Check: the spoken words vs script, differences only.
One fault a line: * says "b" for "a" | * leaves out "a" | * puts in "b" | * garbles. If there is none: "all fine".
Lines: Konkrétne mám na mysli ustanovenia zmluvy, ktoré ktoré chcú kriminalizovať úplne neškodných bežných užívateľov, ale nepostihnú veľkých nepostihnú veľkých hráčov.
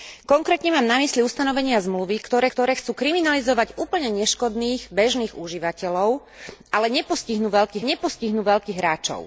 all fine